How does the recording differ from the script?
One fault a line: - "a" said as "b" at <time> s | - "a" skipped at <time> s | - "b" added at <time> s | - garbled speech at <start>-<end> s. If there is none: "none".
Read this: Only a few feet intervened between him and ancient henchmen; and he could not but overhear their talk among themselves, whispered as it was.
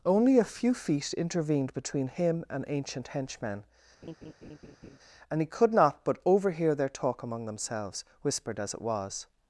none